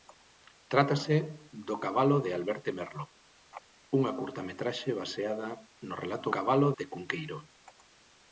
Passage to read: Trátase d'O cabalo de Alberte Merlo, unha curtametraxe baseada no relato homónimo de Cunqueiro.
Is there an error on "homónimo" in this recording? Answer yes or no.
yes